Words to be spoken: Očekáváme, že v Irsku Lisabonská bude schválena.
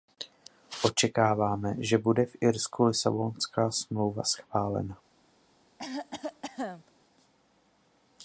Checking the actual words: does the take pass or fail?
fail